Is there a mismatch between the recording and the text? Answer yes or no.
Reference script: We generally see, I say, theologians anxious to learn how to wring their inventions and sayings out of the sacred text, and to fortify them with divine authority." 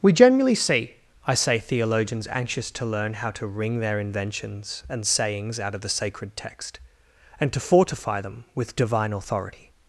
no